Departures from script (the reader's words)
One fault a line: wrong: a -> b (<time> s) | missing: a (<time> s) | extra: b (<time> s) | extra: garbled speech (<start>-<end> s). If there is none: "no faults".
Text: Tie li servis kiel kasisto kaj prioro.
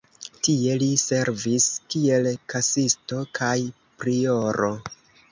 no faults